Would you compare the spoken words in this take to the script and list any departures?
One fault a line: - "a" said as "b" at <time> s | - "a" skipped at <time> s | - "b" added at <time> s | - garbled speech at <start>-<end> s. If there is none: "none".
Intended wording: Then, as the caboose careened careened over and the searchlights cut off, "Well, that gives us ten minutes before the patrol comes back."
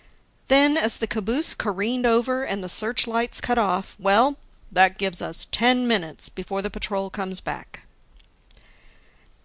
- "careened" skipped at 2.1 s